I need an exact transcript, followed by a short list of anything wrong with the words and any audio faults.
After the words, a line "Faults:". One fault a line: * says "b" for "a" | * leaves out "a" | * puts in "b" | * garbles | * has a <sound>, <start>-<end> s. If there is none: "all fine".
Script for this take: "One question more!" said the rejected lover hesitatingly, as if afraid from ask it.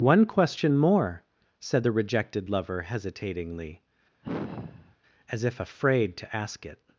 "One question more!" said the rejected lover hesitatingly, as if afraid to ask it.
Faults:
* has a sigh, 4.2-5.0 s
* says "to" for "from"